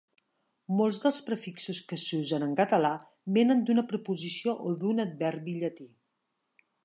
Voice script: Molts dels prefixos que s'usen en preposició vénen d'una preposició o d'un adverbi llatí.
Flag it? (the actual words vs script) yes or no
yes